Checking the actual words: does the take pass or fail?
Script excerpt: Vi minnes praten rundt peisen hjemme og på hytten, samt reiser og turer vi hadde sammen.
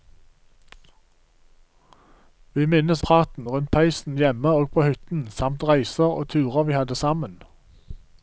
pass